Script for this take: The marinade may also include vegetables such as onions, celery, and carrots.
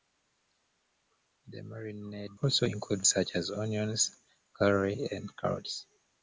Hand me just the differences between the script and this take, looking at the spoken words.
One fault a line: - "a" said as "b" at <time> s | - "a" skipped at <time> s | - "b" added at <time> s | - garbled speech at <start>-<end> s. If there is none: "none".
- "may" skipped at 2.4 s
- "vegetables" skipped at 3.0 s